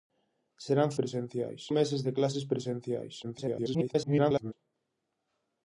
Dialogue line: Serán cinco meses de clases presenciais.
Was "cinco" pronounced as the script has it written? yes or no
no